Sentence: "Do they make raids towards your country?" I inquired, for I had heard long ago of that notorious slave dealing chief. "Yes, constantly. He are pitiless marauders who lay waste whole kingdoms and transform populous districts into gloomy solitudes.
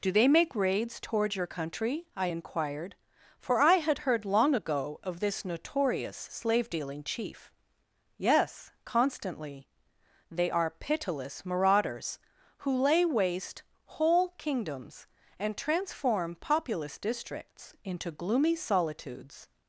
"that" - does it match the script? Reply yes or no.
no